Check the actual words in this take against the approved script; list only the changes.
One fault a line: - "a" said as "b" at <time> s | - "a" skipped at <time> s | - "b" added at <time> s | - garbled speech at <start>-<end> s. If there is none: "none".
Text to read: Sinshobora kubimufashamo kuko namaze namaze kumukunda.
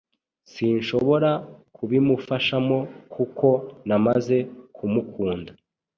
- "namaze" skipped at 4.4 s